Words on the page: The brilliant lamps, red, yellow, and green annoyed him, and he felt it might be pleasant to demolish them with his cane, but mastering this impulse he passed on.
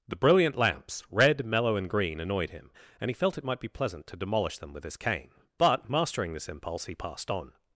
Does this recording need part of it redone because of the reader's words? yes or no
yes